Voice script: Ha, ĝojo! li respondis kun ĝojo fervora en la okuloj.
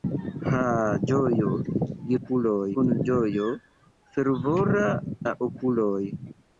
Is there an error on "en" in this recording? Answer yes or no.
yes